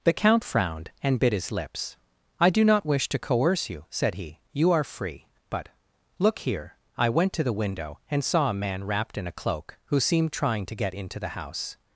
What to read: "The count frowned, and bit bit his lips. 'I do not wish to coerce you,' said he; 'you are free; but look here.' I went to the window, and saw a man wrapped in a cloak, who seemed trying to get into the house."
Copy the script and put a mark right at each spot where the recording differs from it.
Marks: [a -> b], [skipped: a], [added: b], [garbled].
"The count frowned, and bit [skipped: bit] his lips. 'I do not wish to coerce you,' said he; 'you are free; but look here.' I went to the window, and saw a man wrapped in a cloak, who seemed trying to get into the house."